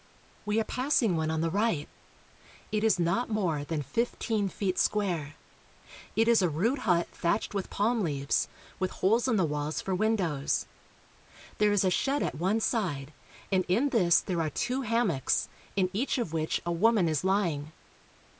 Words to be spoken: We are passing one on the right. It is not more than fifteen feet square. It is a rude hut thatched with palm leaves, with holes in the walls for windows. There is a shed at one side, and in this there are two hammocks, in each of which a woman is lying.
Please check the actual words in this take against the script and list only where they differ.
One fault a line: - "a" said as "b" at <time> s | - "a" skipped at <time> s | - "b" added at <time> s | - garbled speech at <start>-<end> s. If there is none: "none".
none